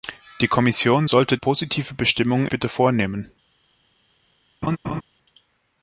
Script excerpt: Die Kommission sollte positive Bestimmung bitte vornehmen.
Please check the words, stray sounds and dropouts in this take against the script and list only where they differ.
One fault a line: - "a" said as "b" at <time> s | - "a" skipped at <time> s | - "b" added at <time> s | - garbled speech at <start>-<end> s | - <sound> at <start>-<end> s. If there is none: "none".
- laugh at 4.6-5.0 s